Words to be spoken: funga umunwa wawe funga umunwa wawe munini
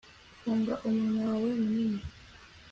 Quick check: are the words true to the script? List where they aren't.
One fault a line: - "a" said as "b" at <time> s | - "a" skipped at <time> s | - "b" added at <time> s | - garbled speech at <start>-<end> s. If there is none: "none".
- "funga umunwa wawe" skipped at 1.5 s